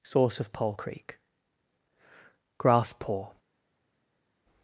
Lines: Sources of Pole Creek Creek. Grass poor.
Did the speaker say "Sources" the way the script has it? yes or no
no